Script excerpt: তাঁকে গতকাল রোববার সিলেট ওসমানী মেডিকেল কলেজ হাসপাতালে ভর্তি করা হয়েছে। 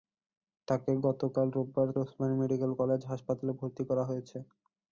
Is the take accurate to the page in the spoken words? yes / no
no